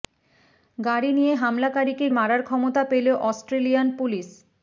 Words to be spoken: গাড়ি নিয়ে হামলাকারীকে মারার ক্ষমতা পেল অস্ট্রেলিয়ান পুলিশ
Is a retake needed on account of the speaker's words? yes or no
no